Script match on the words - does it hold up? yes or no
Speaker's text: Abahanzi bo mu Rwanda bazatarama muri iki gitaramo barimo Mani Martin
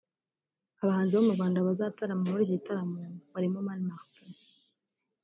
yes